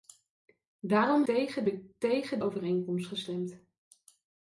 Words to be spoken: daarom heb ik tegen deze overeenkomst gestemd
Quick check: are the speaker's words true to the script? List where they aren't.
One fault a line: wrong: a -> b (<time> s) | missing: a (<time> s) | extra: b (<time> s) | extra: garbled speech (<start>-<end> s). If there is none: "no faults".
wrong: heb -> tegen (1.2 s)
missing: deze (2.4 s)